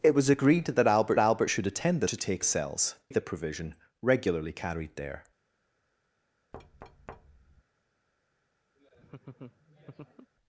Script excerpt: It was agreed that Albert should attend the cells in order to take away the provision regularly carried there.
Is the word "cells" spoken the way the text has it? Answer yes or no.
no